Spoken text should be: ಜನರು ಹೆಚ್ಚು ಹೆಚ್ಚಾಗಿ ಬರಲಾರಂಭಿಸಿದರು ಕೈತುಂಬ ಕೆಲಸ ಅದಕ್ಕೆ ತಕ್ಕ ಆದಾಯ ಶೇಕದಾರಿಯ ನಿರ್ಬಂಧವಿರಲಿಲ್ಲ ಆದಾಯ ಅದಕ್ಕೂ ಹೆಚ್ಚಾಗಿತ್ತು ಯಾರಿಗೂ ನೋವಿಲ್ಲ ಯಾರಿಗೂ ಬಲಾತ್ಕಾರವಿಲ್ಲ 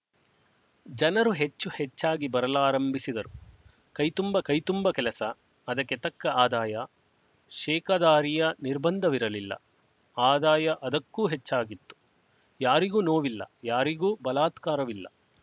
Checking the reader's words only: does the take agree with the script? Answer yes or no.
no